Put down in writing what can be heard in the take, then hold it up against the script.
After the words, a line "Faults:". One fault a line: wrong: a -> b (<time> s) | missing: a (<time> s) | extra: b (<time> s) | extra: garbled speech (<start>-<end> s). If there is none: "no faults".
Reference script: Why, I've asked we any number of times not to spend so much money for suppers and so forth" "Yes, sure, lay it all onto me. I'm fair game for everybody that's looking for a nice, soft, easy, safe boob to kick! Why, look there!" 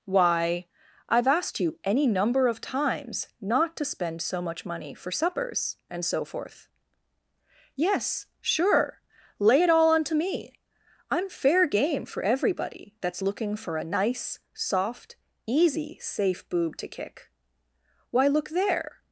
Why, I've asked you any number of times not to spend so much money for suppers and so forth" "Yes, sure, lay it all onto me. I'm fair game for everybody that's looking for a nice, soft, easy, safe boob to kick! Why, look there!"
Faults:
wrong: we -> you (1.6 s)